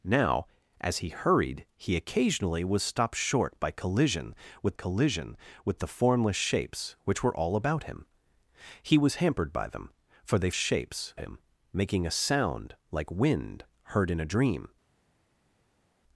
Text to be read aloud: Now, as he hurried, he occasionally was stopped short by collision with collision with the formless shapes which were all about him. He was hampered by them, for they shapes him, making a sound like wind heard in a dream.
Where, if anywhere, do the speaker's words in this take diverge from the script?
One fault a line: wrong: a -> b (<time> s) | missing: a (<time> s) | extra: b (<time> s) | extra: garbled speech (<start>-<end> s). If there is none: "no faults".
no faults